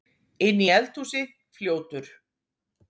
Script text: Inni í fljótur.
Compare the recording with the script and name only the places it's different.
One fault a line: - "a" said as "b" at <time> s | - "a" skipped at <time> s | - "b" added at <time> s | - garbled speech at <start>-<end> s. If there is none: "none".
- "eldhúsi" added at 0.8 s